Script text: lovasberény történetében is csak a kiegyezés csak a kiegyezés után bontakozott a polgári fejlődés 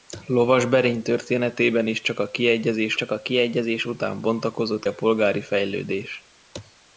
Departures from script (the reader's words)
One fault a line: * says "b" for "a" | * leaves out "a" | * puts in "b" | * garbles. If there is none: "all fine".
all fine